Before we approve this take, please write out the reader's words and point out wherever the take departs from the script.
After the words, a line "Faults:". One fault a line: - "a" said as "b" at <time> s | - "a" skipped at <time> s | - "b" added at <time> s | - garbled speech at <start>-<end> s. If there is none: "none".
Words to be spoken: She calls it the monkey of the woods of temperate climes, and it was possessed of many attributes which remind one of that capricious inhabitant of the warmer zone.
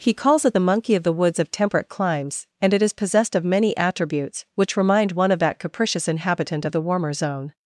He calls it the monkey of the woods of temperate climes, and it is possessed of many attributes which remind one of that capricious inhabitant of the warmer zone.
Faults:
- "She" said as "He" at 0.0 s
- "was" said as "is" at 2.8 s